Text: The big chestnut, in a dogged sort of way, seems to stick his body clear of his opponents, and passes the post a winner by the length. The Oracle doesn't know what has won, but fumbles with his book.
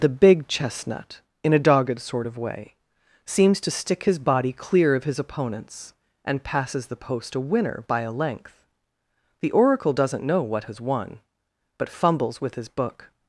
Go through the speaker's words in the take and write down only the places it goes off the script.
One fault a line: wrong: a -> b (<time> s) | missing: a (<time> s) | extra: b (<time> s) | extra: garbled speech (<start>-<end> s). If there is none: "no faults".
wrong: the -> a (8.0 s)